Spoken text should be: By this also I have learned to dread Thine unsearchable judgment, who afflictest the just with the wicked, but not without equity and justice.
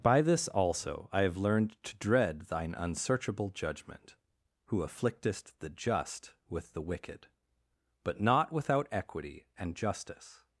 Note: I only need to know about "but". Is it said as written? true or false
true